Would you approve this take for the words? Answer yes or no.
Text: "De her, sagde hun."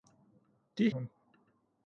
no